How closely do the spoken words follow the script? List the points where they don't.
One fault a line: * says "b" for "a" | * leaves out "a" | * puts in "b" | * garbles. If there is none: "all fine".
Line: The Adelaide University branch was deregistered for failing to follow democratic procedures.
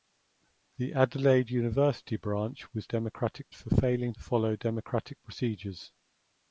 * says "democratic" for "deregistered"
* leaves out "to"